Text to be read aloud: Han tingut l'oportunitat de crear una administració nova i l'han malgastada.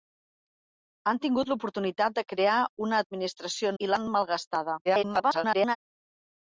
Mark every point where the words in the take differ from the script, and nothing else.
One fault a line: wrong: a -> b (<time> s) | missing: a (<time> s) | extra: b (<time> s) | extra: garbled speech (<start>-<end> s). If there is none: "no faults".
missing: nova (3.7 s)
extra: garbled speech (4.9-5.8 s)